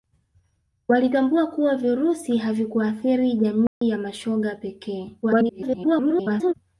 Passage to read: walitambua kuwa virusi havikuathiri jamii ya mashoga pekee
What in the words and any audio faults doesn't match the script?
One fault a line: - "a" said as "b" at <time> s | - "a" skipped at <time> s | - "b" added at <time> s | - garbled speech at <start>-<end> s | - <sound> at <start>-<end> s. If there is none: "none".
- dropout at 3.7-3.8 s
- garbled speech at 5.2-6.5 s